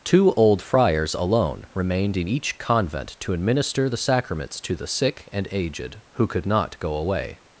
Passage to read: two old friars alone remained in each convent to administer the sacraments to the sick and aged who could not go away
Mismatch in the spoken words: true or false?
false